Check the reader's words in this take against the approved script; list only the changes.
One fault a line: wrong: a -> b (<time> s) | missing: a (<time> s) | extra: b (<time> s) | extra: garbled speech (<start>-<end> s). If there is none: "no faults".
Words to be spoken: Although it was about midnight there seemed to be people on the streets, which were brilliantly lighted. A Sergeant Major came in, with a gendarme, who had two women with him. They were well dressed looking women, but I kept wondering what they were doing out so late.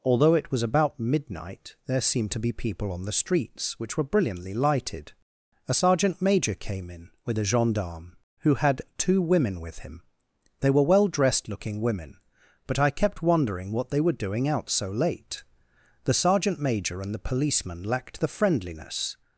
extra: The Sergeant Major and the policeman lacked the friendliness (16.0 s)